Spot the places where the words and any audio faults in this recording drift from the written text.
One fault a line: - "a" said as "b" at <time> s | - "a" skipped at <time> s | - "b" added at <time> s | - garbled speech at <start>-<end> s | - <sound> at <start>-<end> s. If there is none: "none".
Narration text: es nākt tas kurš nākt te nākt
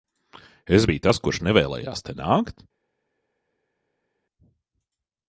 - "nākt" said as "biju" at 0.9 s
- "nākt" said as "nevēlējās" at 1.5 s